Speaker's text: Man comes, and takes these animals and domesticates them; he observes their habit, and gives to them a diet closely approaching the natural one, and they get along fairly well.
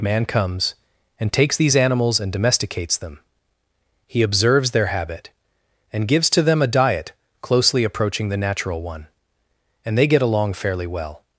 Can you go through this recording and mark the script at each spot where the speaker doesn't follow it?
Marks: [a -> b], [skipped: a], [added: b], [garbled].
Man comes, and takes these animals and domesticates them; he observes their habit, and gives to them a diet closely approaching the natural one, and they get along fairly well.